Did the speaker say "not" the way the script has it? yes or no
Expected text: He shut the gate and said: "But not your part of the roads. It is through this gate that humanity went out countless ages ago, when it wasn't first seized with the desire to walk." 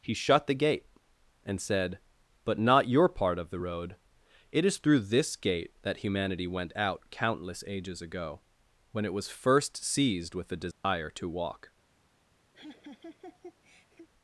yes